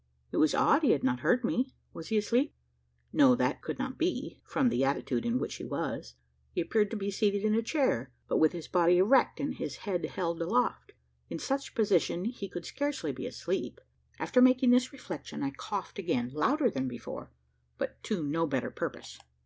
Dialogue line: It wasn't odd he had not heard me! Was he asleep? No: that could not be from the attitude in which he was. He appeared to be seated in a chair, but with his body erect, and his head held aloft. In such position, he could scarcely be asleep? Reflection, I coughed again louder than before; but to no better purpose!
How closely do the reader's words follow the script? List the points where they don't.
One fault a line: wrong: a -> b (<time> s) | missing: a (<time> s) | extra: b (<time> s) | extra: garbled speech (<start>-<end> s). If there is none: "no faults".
wrong: wasn't -> was (0.4 s)
extra: After making this (14.2 s)